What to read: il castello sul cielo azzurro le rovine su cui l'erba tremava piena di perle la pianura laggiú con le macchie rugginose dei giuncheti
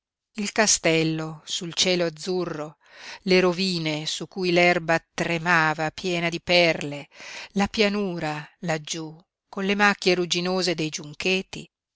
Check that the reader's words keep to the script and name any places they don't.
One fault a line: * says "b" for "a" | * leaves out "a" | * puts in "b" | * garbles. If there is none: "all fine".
all fine